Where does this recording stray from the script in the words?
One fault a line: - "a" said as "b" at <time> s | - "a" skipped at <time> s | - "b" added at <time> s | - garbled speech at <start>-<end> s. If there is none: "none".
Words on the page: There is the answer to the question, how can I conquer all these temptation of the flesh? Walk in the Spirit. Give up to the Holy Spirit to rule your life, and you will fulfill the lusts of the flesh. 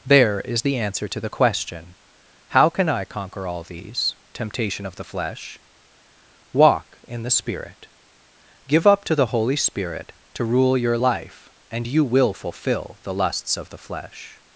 none